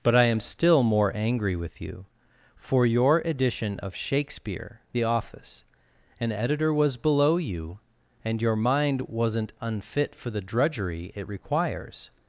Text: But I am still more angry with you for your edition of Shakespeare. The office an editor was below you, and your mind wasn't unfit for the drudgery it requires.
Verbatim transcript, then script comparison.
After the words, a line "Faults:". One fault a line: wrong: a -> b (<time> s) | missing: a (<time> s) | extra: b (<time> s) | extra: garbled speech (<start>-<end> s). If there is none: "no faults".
But I am still more angry with you for your edition of Shakespeare. The office an editor was below you, and your mind wasn't unfit for the drudgery it requires.
Faults:
no faults